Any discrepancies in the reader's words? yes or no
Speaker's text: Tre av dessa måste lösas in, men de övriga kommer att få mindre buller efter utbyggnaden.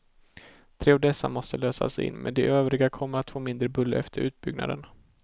no